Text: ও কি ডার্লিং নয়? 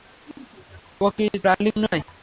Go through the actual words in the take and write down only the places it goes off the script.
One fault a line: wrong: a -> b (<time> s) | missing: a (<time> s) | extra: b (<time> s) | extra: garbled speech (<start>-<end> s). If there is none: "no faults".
no faults